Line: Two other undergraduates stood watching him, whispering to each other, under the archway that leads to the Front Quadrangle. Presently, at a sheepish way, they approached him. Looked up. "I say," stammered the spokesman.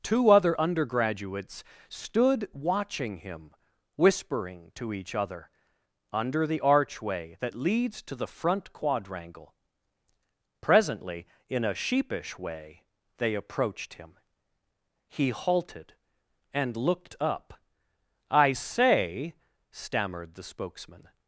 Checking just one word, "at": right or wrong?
wrong